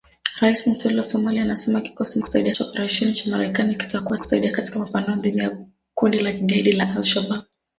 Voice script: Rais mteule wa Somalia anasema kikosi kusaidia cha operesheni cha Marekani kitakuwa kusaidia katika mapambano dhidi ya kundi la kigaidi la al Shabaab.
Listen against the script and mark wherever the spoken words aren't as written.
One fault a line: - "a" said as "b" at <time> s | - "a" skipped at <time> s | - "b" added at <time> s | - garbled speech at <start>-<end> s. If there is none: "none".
none